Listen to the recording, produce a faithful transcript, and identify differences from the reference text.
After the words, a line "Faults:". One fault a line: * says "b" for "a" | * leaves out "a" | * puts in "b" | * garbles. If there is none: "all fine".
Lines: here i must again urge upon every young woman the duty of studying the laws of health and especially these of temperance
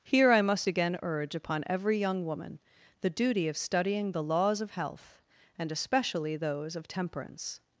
here i must again urge upon every young woman the duty of studying the laws of health and especially those of temperance
Faults:
* says "those" for "these"